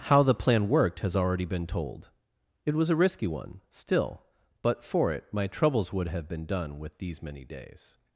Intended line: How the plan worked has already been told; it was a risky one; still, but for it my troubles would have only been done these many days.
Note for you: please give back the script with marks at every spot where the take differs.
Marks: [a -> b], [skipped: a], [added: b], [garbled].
How the plan worked has already been told; it was a risky one; still, but for it my troubles would have [skipped: only] been done [added: with] these many days.